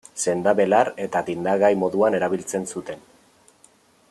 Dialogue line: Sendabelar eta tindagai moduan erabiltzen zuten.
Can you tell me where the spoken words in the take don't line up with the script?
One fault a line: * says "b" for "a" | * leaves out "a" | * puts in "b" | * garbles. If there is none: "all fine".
all fine